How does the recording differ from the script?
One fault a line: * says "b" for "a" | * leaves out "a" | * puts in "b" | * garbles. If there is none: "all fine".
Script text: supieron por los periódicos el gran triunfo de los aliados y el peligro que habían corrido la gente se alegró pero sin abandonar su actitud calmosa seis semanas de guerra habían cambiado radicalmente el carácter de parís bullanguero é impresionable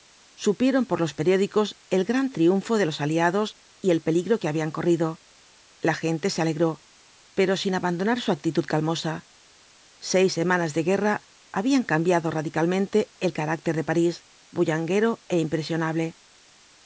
all fine